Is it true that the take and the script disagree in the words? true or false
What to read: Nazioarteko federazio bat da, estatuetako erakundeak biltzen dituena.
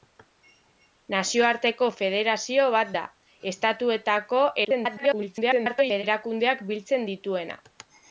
true